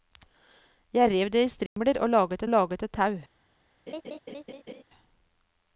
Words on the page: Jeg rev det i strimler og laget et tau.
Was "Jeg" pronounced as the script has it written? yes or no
yes